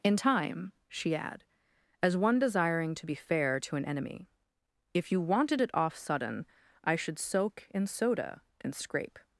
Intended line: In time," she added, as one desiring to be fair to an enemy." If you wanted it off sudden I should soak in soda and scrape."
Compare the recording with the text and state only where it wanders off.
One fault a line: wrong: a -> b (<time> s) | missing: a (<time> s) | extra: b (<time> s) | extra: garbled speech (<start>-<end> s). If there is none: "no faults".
wrong: added -> add (1.1 s)